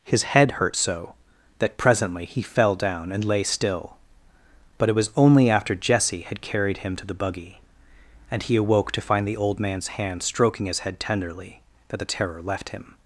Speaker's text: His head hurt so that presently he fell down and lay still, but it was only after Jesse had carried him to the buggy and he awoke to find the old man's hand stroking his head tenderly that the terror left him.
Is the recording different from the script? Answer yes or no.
no